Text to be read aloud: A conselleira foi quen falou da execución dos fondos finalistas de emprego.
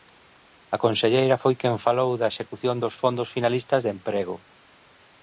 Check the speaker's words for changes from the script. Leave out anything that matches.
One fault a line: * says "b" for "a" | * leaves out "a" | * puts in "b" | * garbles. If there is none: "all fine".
all fine